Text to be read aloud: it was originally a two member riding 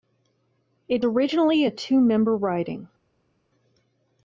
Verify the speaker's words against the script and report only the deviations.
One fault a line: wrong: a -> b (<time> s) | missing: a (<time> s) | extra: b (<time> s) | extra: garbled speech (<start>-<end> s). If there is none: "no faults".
missing: was (1.1 s)